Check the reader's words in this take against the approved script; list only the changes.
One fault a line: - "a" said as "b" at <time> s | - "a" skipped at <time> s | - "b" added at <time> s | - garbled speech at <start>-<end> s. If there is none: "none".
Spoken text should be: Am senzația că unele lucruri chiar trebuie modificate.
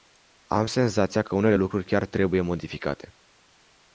none